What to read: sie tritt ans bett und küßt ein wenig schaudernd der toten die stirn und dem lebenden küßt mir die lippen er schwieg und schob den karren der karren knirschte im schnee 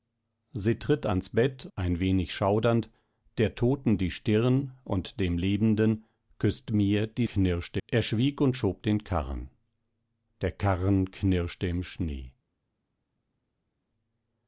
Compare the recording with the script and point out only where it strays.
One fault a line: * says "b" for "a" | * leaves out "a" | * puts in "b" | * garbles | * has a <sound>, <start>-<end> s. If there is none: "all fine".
* leaves out "und küßt"
* says "knirschte" for "lippen"